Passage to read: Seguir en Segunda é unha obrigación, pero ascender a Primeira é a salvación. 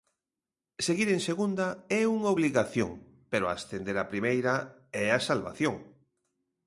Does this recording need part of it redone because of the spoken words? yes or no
no